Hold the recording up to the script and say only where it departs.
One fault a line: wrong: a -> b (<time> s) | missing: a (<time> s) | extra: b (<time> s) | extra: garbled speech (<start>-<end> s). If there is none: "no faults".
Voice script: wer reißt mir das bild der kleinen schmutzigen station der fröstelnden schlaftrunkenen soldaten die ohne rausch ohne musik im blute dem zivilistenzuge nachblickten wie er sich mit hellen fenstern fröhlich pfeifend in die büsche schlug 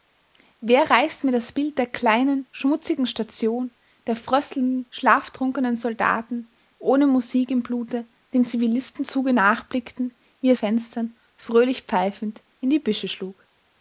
missing: die (6.5 s)
missing: rausch ohne (7.1 s)
missing: sich mit hellen (10.6 s)